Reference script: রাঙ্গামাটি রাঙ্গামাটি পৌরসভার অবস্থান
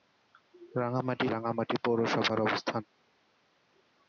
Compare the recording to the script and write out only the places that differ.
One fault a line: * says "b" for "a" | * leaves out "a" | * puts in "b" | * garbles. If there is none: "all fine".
all fine